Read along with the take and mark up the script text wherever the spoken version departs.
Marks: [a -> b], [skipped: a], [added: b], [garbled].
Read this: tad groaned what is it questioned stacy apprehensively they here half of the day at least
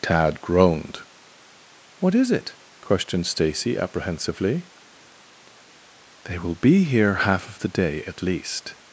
tad groaned what is it questioned stacy apprehensively they [added: will be] here half of the day at least